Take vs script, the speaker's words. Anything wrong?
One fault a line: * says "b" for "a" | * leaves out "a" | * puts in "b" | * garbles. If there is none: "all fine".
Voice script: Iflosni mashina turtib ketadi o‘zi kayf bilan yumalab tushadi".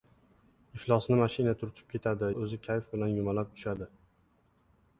all fine